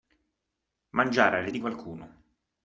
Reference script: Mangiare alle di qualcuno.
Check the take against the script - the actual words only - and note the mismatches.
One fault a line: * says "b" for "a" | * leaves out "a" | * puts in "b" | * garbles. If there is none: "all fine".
all fine